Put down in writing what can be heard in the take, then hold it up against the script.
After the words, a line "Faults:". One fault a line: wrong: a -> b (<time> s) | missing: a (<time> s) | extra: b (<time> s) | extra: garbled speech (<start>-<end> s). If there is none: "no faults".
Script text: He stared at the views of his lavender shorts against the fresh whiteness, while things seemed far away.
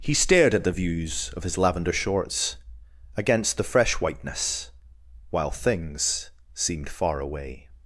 He stared at the views of his lavender shorts against the fresh whiteness, while things seemed far away.
Faults:
no faults